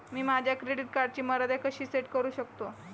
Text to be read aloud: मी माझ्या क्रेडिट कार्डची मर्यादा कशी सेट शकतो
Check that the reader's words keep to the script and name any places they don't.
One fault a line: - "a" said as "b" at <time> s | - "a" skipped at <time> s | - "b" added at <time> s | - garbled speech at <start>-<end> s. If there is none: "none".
- "करू" added at 2.1 s